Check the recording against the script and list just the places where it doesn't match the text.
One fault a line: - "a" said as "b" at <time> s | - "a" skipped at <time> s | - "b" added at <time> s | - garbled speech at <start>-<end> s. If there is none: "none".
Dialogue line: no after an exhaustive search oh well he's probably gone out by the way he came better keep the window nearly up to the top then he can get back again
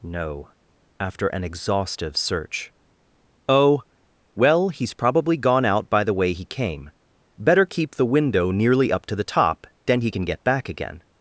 none